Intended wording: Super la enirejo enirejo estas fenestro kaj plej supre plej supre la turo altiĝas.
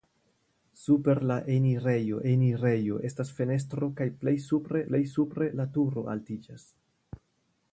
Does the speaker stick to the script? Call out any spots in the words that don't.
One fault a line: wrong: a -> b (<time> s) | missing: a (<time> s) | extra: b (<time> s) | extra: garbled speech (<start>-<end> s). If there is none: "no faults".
no faults